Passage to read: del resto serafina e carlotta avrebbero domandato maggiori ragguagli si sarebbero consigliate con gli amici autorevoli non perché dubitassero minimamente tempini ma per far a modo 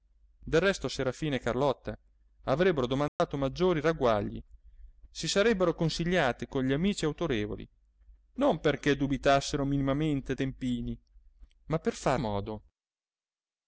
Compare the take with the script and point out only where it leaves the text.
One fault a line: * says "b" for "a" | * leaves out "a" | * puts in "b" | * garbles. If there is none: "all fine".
all fine